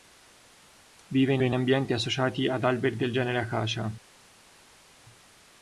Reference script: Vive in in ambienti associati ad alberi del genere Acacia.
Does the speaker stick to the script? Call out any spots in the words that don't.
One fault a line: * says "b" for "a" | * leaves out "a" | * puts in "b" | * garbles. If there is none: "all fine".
all fine